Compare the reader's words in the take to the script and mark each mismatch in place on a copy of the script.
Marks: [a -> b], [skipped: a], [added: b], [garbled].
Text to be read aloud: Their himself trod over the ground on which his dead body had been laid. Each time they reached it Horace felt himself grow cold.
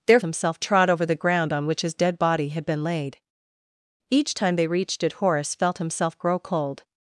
Their himself trod over the ground on which his dead body had been laid. Each time they reached it Horace felt himself grow cold.